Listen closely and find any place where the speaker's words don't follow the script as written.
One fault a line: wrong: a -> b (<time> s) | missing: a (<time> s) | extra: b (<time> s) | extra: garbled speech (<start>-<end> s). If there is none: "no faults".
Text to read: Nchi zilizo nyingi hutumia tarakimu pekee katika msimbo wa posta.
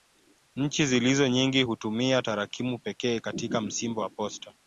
no faults